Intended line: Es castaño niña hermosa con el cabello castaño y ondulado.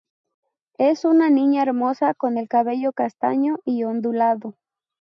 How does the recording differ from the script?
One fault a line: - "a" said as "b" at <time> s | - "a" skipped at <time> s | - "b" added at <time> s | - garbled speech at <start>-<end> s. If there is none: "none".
- "castaño" said as "una" at 1.1 s